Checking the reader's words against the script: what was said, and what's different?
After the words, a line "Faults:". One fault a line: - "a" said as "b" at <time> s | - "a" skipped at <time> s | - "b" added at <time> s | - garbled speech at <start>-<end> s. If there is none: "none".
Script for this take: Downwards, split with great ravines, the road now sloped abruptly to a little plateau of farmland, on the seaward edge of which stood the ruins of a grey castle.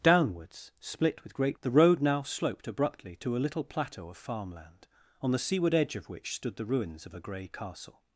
Downwards, split with great the road now sloped abruptly to a little plateau of farmland, on the seaward edge of which stood the ruins of a grey castle.
Faults:
- "ravines" skipped at 1.6 s